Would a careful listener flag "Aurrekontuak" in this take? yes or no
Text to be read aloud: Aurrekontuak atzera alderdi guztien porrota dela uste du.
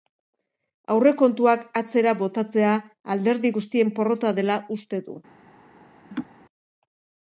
no